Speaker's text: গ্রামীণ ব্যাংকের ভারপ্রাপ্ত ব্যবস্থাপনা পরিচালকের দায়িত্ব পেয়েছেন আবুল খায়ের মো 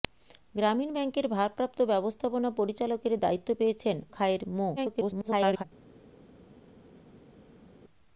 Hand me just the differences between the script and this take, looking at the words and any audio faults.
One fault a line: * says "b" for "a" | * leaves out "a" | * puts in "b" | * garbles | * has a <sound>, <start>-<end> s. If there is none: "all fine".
* leaves out "আবুল"
* garbles